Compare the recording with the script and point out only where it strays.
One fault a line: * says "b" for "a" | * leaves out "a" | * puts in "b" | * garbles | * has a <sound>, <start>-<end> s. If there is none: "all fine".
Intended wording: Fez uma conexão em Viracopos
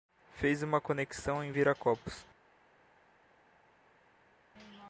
all fine